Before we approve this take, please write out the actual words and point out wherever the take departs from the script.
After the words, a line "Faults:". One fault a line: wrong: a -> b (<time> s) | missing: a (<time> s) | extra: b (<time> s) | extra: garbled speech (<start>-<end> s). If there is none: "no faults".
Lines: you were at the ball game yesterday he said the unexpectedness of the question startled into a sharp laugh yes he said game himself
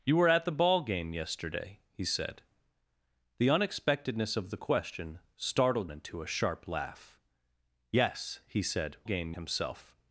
you were at the ball game yesterday he said the unexpectedness of the question startled into a sharp laugh yes he said game himself
Faults:
no faults